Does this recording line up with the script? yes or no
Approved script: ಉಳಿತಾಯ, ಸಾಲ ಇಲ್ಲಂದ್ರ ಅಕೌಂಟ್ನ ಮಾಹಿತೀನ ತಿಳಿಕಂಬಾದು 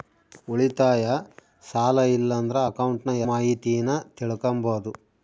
yes